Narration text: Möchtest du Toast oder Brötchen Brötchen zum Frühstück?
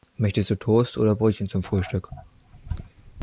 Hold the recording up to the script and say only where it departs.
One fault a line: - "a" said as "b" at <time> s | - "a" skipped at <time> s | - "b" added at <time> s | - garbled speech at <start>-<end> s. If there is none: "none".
- "Brötchen" skipped at 1.5 s